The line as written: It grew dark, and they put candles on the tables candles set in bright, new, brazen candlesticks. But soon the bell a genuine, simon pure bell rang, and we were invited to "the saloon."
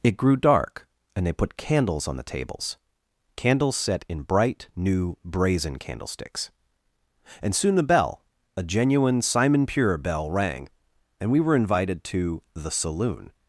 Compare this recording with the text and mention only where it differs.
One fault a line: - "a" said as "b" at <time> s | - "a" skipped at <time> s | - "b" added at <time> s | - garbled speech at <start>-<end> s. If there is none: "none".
- "But" said as "And" at 7.4 s